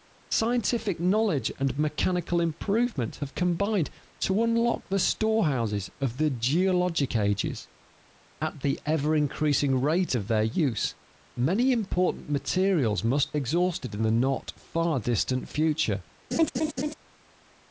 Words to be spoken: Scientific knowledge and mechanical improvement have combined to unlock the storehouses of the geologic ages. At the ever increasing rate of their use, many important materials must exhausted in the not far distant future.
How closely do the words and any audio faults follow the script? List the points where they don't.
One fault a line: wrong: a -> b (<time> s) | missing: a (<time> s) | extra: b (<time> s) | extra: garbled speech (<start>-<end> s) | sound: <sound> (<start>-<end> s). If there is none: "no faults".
sound: laugh (16.3-16.9 s)